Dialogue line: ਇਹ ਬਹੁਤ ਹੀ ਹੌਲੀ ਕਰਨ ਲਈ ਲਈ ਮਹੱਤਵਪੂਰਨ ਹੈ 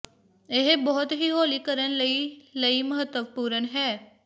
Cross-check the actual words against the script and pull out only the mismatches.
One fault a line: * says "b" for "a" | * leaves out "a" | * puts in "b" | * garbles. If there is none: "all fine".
all fine